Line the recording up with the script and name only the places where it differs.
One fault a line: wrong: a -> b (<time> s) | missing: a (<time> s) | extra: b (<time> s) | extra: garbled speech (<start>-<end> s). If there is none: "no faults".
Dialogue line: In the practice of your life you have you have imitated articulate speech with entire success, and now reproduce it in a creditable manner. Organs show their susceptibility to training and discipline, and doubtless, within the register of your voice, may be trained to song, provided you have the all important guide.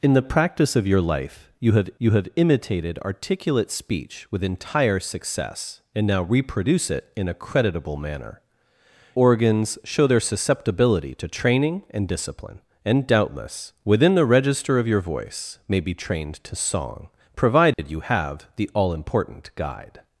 no faults